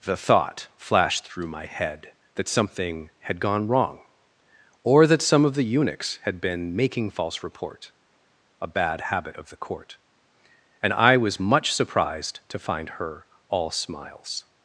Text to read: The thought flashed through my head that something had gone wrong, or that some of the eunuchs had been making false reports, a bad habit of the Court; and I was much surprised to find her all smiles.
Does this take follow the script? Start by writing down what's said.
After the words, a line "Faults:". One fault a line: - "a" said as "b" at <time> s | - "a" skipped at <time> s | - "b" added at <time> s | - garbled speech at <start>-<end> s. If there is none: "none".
The thought flashed through my head that something had gone wrong, or that some of the eunuchs had been making false report, a bad habit of the Court; and I was much surprised to find her all smiles.
Faults:
- "reports" said as "report" at 7.4 s